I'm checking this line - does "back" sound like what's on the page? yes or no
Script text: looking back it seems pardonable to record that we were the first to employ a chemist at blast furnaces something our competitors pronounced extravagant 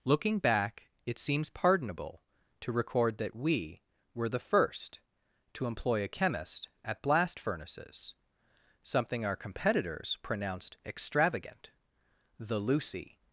yes